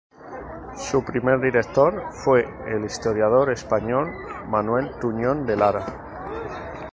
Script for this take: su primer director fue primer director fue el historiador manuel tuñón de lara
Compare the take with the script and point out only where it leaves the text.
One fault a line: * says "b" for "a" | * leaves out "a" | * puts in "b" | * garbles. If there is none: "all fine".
* leaves out "primer director fue"
* puts in "español"